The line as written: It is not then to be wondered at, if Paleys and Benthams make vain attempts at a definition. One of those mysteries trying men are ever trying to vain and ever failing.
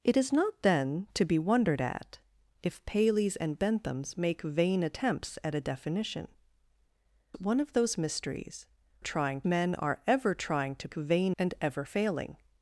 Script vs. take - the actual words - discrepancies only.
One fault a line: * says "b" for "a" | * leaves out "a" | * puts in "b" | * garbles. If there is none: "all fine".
all fine